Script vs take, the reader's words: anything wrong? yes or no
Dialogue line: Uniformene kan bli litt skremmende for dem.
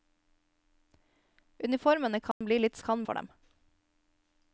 yes